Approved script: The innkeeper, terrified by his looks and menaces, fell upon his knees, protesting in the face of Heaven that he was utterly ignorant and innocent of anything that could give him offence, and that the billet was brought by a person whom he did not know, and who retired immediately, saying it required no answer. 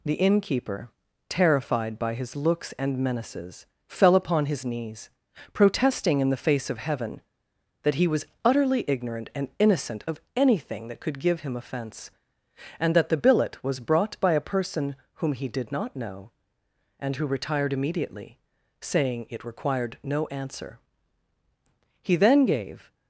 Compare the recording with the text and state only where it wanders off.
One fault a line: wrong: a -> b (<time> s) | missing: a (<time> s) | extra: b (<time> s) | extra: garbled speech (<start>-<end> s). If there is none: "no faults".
extra: He then gave (22.0 s)